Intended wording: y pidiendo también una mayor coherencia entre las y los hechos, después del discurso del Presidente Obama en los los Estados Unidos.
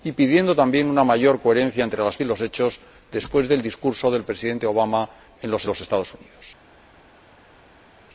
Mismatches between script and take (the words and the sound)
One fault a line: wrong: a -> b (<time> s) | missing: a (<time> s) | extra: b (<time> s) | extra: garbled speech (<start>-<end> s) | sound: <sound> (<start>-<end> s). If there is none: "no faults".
no faults